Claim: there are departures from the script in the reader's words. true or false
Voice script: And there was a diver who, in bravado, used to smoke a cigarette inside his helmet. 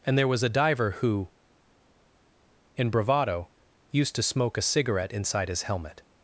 false